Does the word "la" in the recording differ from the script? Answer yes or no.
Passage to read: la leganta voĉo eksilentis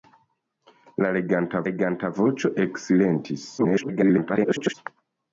no